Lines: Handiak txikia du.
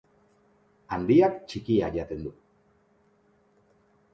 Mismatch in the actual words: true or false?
true